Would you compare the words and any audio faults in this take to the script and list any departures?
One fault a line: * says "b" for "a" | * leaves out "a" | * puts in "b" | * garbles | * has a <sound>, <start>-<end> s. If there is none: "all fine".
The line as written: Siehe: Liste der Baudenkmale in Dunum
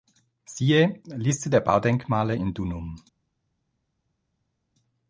all fine